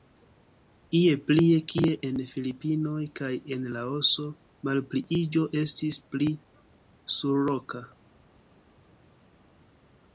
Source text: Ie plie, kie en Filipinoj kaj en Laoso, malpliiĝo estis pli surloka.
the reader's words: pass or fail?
pass